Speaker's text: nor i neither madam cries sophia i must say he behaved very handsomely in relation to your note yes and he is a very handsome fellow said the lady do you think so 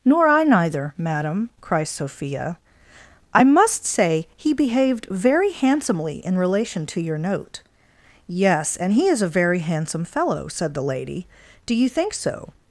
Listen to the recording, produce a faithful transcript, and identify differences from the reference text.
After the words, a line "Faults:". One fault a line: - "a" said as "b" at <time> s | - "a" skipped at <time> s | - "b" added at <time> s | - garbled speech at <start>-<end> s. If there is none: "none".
nor i neither madam cries sophia i must say he behaved very handsomely in relation to your note yes and he is a very handsome fellow said the lady do you think so
Faults:
none